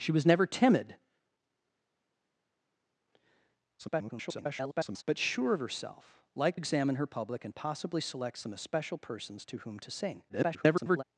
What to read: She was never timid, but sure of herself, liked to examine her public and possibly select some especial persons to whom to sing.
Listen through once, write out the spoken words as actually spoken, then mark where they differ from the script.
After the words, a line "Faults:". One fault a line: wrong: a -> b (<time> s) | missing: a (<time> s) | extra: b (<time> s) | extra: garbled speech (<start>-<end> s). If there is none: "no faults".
She was never timid, [garbled] but sure of herself, liked examine her public and possibly select some especial persons to whom to sing. [garbled]
Faults:
extra: garbled speech (3.8-5.0 s)
missing: to (6.6 s)
extra: garbled speech (10.3-11.0 s)